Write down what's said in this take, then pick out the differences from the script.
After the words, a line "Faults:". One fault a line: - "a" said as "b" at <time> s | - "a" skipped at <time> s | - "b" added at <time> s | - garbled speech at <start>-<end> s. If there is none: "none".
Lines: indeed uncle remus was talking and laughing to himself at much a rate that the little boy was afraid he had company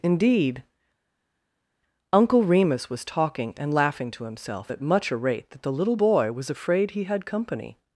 indeed uncle remus was talking and laughing to himself at much a rate that the little boy was afraid he had company
Faults:
none